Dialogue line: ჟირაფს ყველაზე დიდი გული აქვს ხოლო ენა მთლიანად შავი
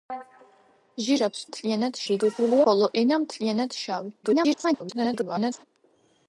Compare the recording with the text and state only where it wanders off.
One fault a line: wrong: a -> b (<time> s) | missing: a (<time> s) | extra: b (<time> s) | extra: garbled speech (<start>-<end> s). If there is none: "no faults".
wrong: ყველაზე -> მთლიანად (1.5 s)
missing: აქვს (2.6 s)
extra: garbled speech (4.2-5.6 s)